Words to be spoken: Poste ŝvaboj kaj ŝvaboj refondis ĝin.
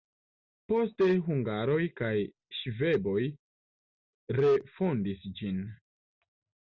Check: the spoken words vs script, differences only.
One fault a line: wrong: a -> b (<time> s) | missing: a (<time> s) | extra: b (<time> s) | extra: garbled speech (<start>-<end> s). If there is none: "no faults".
wrong: ŝvaboj -> hungaroj (1.2 s)